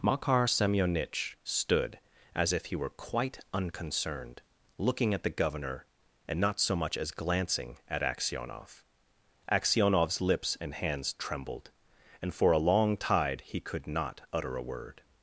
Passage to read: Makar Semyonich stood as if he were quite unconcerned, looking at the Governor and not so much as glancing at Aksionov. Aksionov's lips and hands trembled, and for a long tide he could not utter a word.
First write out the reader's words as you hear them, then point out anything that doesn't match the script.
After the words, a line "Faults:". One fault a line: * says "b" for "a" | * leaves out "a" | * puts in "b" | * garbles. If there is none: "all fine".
Makar Semyonich stood as if he were quite unconcerned, looking at the Governor and not so much as glancing at Aksionov. Aksionov's lips and hands trembled, and for a long tide he could not utter a word.
Faults:
all fine